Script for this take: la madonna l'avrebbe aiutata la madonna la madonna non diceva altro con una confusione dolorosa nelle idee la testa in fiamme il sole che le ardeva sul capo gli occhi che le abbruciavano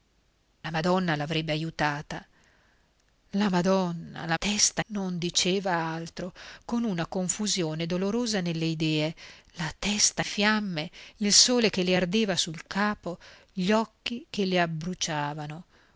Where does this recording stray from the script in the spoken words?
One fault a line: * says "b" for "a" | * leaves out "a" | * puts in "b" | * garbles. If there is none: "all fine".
* says "testa" for "madonna"
* leaves out "in"